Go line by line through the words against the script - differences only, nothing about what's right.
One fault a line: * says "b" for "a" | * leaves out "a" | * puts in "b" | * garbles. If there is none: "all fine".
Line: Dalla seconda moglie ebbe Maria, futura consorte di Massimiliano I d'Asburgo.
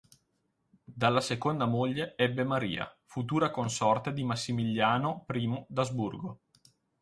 all fine